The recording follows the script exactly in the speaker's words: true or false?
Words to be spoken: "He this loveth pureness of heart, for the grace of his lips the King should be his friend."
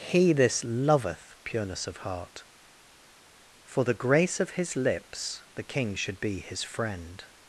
true